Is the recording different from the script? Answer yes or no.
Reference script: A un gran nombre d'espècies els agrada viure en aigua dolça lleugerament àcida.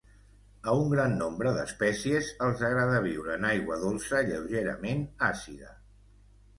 no